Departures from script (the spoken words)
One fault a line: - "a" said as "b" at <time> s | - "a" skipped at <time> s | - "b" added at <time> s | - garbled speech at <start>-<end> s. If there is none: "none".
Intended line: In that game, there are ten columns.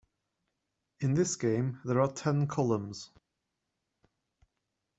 - "that" said as "this" at 1.1 s